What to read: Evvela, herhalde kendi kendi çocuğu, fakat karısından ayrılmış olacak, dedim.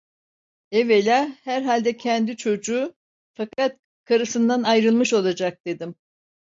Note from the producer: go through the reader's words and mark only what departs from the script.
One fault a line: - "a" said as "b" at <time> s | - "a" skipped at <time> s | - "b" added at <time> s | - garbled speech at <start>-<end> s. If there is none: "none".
- "kendi" skipped at 2.4 s